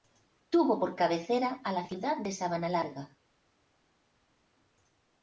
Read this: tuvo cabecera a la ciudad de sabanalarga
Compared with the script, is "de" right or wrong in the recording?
right